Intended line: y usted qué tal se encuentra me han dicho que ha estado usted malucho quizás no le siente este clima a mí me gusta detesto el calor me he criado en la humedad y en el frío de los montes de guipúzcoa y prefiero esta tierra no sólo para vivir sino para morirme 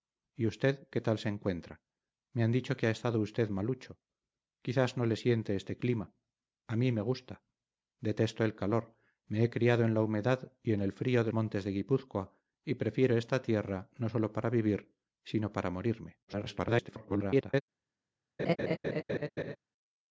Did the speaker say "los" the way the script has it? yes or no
no